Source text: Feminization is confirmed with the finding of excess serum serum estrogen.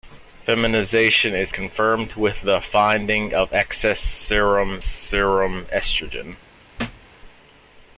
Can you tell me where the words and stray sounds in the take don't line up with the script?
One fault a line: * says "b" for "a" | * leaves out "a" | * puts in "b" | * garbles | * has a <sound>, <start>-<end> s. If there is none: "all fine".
* has a thud, 6.8-7.1 s